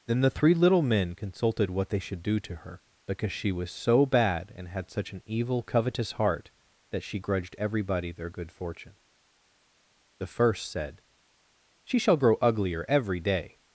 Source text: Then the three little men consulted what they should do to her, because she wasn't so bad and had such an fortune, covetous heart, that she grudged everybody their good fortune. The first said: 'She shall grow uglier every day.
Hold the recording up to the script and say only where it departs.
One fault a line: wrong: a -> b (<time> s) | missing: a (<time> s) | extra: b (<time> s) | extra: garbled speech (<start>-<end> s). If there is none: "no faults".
wrong: wasn't -> was (3.5 s)
wrong: fortune -> evil (5.2 s)